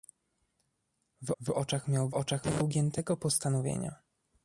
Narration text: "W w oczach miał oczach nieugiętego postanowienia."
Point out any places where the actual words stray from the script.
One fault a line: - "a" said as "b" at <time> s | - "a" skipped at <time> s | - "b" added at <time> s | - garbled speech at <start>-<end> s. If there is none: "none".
none